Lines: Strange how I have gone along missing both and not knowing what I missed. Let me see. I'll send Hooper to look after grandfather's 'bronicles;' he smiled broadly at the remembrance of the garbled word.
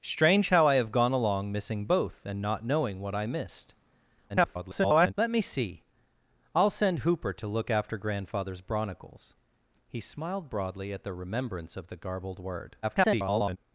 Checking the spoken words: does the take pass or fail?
fail